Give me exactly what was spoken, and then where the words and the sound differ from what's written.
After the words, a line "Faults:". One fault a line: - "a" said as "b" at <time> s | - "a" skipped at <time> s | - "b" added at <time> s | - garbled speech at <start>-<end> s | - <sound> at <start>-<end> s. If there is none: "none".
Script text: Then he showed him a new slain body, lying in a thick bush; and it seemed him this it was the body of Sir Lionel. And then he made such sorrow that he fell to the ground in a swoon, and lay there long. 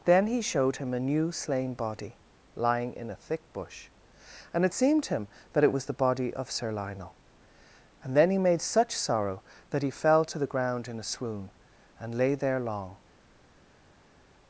Then he showed him a new slain body, lying in a thick bush; and it seemed him that it was the body of Sir Lionel. And then he made such sorrow that he fell to the ground in a swoon, and lay there long.
Faults:
- "this" said as "that" at 5.5 s